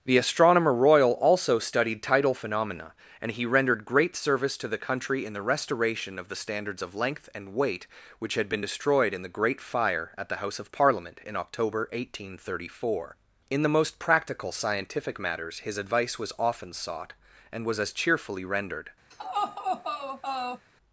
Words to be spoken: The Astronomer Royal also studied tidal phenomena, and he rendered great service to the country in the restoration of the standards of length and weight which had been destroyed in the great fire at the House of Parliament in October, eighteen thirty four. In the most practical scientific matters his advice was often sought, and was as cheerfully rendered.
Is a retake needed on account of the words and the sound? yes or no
yes